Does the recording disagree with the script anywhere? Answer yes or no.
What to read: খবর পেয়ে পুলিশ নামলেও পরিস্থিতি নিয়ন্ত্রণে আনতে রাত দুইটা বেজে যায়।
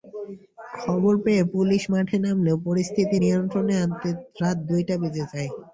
yes